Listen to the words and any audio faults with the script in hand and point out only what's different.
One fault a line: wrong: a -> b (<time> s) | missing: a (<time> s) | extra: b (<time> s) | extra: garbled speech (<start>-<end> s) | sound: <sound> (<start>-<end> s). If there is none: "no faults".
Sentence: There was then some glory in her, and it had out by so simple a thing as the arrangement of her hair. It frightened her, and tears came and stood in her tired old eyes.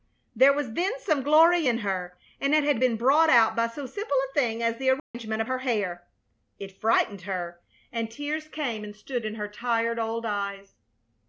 extra: been brought (2.8 s)
sound: dropout (5.0-5.1 s)